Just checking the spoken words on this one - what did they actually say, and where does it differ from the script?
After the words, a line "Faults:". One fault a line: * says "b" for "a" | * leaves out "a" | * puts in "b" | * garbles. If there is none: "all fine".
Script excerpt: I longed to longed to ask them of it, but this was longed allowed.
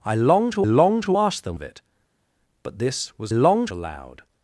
I longed to longed to ask them of it, but this was longed allowed.
Faults:
all fine